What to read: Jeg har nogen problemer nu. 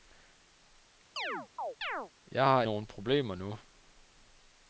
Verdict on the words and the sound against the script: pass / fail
fail